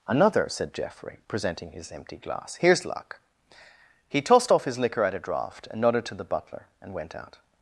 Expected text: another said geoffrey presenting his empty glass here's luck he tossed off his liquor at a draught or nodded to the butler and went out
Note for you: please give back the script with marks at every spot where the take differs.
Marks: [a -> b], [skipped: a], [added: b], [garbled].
another said geoffrey presenting his empty glass here's luck he tossed off his liquor at a draught [or -> and] nodded to the butler and went out